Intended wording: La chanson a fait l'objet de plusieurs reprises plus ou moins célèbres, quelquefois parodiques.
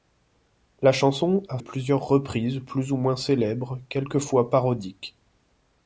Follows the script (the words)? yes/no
no